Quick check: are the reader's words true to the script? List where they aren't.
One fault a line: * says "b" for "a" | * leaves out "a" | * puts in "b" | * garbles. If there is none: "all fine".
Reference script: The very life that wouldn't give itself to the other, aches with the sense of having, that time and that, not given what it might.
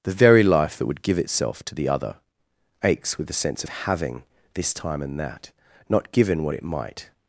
* says "would" for "wouldn't"
* says "this" for "that"